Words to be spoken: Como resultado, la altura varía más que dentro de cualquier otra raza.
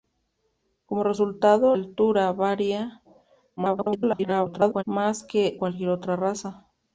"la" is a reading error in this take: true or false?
true